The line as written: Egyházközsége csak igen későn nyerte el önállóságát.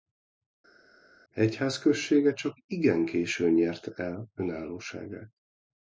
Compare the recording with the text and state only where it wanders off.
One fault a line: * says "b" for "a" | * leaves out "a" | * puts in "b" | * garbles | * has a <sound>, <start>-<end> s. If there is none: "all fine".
all fine